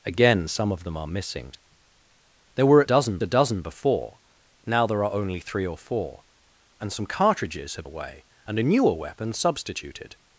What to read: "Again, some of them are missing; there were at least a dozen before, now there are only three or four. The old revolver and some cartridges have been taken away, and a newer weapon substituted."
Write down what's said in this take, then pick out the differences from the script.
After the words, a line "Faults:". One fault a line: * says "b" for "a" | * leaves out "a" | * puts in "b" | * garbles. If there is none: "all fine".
"Again, some of them are missing; there were at dozen a dozen before, now there are only three or four. And some cartridges have away, and a newer weapon substituted."
Faults:
* says "dozen" for "least"
* leaves out "The old revolver"
* leaves out "been taken"